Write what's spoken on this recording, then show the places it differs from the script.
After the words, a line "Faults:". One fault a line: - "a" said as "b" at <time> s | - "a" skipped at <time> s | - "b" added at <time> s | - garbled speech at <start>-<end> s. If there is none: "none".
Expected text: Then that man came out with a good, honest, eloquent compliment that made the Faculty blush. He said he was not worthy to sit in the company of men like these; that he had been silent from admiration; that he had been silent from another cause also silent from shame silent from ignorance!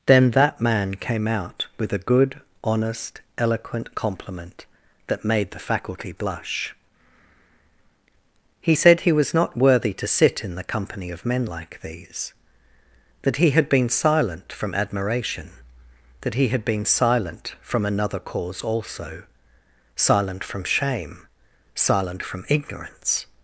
Then that man came out with a good, honest, eloquent compliment that made the Faculty blush. He said he was not worthy to sit in the company of men like these; that he had been silent from admiration; that he had been silent from another cause also silent from shame silent from ignorance!
Faults:
none